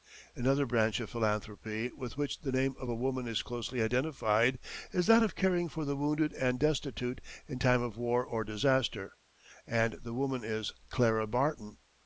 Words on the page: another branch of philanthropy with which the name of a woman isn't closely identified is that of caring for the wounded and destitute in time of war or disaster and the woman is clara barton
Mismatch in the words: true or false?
true